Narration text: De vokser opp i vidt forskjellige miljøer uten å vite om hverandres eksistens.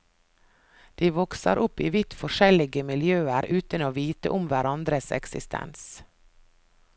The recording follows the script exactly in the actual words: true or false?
true